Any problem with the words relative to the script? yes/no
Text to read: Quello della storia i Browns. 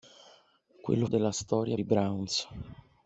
no